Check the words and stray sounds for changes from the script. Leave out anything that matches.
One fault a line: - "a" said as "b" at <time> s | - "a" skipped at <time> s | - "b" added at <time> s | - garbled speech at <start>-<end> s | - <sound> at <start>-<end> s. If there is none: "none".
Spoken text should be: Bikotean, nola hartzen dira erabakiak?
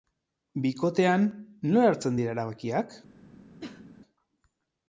- cough at 3.6-3.9 s